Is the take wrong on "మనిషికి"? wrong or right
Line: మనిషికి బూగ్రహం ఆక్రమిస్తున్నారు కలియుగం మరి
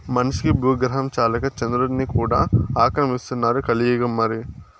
right